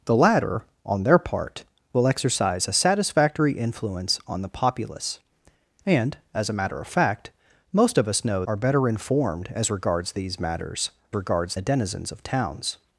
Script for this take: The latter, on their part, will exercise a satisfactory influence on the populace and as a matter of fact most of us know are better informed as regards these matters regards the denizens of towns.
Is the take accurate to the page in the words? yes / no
yes